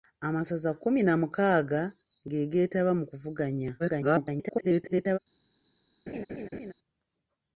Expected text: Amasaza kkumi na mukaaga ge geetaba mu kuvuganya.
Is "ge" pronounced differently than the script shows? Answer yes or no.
no